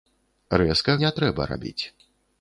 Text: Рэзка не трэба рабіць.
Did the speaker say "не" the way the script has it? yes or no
yes